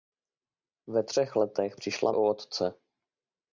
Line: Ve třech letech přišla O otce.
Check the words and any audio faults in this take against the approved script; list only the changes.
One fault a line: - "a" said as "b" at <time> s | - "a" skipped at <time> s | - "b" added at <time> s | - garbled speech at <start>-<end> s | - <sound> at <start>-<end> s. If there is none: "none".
none